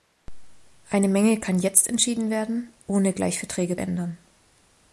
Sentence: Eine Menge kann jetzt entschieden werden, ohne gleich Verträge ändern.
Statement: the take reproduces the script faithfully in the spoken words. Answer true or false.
true